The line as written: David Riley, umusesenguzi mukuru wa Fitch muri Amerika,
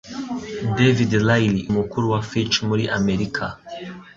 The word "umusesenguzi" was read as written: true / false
false